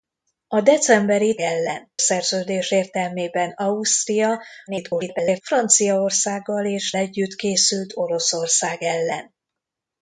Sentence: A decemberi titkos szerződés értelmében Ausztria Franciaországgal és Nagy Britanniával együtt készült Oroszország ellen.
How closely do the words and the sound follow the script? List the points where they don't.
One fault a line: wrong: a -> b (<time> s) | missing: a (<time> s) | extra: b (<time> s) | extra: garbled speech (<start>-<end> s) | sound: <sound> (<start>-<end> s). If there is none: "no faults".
wrong: titkos -> ellen (1.4 s)
extra: garbled speech (4.7-5.4 s)
missing: Nagy Britanniával (6.9 s)